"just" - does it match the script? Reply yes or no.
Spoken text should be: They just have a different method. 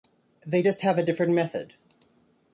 yes